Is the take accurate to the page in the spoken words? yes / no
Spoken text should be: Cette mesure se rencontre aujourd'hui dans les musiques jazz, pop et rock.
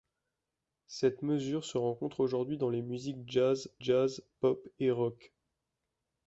no